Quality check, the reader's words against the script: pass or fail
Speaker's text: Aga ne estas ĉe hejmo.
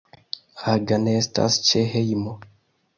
pass